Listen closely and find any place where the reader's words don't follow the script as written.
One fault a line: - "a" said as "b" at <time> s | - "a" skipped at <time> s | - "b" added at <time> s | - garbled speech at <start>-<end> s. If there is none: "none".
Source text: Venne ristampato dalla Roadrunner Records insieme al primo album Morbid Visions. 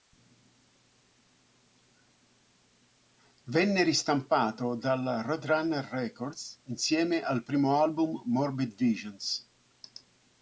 none